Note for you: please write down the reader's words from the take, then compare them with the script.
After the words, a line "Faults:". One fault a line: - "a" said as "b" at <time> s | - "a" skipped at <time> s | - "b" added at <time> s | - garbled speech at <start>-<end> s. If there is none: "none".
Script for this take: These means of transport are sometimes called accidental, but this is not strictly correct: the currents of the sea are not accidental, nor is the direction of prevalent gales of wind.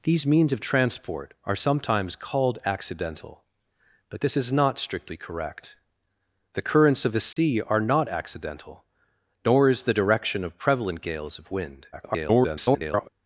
These means of transport are sometimes called accidental, but this is not strictly correct: the currents of the sea are not accidental, nor is the direction of prevalent gales of wind. [garbled]
Faults:
- garbled speech at 11.9-13.1 s